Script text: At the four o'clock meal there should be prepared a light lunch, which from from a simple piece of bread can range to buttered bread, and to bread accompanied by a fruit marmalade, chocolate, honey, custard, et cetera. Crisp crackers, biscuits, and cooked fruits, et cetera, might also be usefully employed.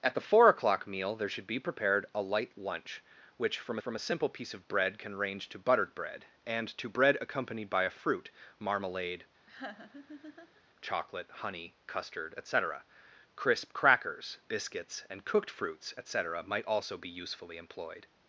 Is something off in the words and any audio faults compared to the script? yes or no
yes